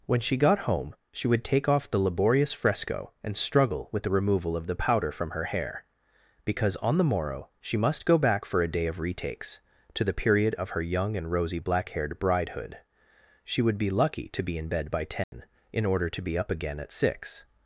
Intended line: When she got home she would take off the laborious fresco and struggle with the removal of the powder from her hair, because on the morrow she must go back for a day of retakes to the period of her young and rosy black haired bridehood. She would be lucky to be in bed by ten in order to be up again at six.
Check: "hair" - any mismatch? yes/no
no